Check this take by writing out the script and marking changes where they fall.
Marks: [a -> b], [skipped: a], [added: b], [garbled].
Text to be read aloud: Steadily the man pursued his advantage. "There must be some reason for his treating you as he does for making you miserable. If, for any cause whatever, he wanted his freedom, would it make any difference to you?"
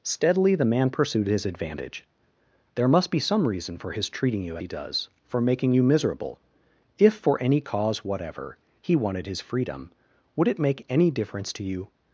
Steadily the man pursued his advantage. "There must be some reason for his treating you [skipped: as] he does for making you miserable. If, for any cause whatever, he wanted his freedom, would it make any difference to you?"